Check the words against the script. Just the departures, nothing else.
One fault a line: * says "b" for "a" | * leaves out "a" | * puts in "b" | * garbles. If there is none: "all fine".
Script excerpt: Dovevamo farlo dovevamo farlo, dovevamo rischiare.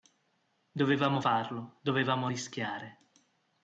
* leaves out "farlo dovevamo"